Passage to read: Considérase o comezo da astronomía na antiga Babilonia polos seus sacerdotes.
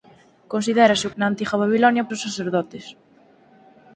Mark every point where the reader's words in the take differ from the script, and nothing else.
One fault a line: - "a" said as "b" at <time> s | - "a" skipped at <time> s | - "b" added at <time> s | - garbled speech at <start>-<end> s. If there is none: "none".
- "comezo da astronomía" skipped at 1.1 s
- "polos" skipped at 2.1 s